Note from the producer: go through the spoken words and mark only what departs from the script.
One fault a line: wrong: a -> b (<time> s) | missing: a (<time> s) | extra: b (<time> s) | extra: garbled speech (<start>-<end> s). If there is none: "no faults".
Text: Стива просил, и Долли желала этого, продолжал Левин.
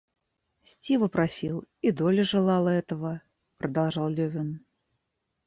no faults